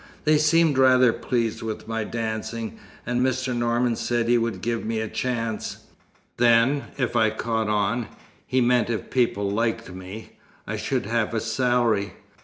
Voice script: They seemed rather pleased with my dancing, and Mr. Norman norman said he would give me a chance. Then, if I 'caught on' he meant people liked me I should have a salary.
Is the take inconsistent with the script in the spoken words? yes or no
yes